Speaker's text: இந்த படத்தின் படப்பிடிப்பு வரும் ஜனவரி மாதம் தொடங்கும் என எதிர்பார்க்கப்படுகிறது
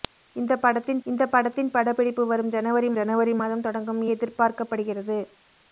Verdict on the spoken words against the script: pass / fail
fail